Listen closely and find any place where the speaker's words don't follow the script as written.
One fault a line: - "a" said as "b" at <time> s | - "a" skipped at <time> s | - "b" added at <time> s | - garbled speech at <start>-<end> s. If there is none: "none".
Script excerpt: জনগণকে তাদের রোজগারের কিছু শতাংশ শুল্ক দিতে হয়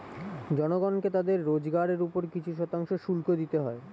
- "উপর" added at 2.0 s